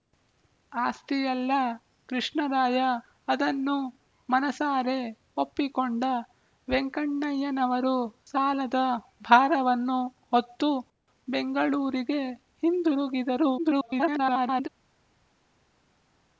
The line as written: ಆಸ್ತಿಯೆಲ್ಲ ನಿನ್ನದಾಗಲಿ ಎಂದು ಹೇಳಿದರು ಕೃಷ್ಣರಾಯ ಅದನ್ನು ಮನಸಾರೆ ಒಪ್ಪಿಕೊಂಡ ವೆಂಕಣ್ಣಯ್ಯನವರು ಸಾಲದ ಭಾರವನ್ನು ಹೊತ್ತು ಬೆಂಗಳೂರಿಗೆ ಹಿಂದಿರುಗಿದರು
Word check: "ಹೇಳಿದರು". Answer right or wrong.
wrong